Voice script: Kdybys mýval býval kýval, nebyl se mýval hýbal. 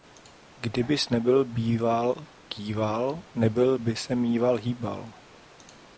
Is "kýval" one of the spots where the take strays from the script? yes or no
no